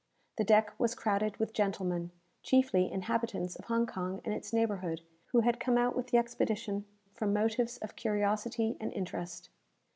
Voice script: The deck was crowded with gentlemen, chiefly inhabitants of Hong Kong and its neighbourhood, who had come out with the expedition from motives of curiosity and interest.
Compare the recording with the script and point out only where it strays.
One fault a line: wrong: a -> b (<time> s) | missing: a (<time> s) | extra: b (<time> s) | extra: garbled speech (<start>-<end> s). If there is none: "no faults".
no faults